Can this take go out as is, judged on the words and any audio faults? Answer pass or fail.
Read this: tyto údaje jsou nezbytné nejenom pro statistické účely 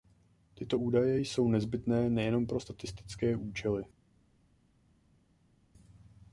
pass